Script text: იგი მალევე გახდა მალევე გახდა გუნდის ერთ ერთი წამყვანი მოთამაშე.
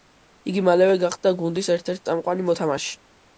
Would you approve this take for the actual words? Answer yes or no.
no